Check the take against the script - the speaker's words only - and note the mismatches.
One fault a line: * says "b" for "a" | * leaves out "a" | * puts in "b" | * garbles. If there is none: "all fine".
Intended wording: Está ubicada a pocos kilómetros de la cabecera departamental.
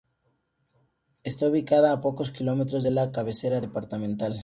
all fine